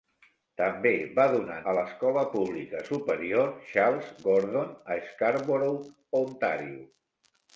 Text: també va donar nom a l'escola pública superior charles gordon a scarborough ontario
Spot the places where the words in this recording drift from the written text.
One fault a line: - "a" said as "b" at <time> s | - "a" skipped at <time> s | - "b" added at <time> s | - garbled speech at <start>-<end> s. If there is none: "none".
- "nom" skipped at 1.6 s